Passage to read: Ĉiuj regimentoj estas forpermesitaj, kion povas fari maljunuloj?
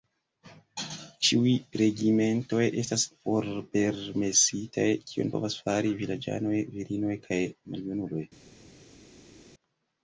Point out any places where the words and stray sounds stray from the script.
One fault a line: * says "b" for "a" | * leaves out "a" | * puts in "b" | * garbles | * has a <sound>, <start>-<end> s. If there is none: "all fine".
* puts in "vilaĝanoj virinoj kaj"